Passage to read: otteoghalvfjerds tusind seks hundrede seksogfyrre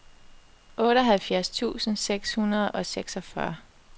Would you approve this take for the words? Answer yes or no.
no